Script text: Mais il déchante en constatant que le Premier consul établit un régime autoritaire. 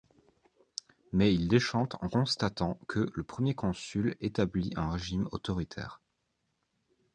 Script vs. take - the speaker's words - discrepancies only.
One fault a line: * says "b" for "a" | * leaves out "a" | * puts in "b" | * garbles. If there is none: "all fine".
all fine